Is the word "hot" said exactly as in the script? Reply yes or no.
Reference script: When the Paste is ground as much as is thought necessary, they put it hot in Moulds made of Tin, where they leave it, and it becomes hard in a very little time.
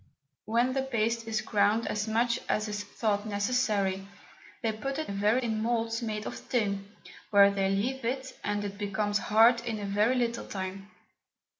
no